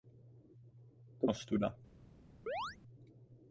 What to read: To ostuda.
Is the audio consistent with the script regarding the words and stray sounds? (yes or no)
no